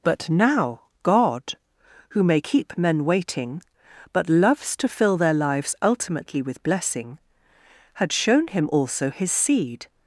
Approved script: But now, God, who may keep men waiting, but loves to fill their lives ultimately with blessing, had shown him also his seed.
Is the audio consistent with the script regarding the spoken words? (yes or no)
yes